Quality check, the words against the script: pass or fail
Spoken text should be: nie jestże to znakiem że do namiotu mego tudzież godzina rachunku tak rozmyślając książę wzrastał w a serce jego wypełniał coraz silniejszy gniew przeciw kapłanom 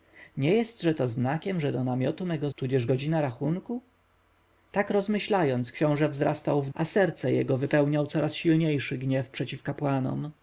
pass